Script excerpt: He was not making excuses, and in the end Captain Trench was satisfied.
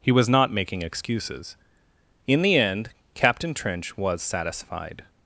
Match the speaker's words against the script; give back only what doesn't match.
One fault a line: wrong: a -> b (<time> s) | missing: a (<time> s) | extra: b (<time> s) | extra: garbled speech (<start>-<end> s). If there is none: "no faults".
missing: and (1.6 s)